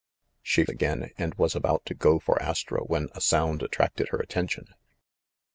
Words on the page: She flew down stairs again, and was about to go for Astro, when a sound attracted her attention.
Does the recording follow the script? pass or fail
fail